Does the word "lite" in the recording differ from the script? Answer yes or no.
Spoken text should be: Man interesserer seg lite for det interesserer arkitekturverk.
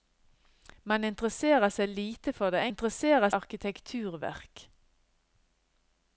no